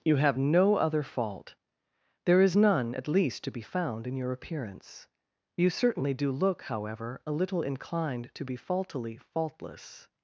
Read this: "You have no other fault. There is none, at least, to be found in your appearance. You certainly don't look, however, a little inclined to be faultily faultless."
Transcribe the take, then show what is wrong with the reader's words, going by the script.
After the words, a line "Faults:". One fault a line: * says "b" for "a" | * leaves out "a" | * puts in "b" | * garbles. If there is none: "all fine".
"You have no other fault. There is none, at least, to be found in your appearance. You certainly do look, however, a little inclined to be faultily faultless."
Faults:
* says "do" for "don't"